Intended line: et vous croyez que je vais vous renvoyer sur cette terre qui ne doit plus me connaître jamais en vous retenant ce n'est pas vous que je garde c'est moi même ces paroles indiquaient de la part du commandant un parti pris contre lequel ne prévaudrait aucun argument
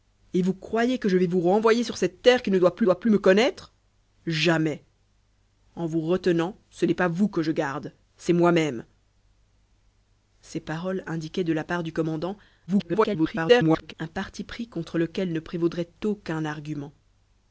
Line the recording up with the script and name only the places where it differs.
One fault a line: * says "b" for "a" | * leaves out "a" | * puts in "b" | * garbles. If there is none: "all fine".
* puts in "doit plus"
* garbles